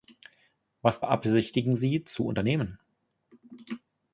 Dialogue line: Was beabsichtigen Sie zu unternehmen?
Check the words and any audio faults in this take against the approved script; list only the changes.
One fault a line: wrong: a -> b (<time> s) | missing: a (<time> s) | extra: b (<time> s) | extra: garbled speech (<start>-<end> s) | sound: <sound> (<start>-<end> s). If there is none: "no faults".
no faults